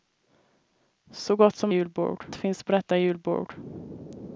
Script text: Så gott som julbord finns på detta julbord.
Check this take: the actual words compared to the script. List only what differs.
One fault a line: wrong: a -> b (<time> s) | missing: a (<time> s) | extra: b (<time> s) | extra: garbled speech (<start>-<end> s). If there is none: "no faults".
no faults